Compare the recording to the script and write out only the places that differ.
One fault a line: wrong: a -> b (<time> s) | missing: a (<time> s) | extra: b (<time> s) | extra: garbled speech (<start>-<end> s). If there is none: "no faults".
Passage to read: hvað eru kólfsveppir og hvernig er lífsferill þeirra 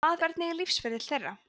missing: eru kólfsveppir og (0.2 s)